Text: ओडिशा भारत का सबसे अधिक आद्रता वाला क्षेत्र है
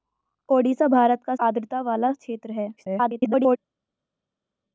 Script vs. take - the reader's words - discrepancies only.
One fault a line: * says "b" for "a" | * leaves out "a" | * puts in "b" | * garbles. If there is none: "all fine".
* leaves out "सबसे अधिक"
* garbles